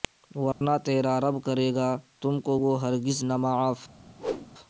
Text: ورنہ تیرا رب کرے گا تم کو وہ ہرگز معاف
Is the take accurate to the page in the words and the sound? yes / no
no